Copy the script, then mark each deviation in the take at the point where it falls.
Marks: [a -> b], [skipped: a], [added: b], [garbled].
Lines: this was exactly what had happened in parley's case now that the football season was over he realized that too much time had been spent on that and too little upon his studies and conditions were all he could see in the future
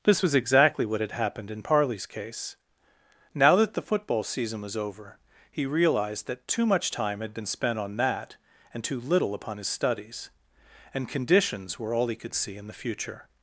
this was exactly what had happened in parley's case now that the football season was over he realized that too much time had been spent on that and too little upon his studies and conditions were all he could see in the future